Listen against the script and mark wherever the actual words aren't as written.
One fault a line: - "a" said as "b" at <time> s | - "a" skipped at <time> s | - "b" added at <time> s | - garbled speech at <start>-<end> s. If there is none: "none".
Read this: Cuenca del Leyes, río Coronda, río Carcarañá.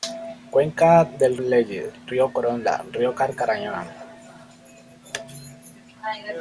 none